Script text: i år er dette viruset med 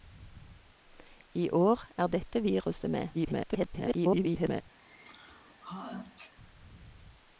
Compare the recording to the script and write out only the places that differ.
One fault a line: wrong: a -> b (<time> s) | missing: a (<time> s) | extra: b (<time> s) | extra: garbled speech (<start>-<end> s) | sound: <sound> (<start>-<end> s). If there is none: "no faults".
extra: garbled speech (3.1-4.6 s)
sound: sneeze (4.8-6.3 s)